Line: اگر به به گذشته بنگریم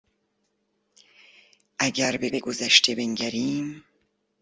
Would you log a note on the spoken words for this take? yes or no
no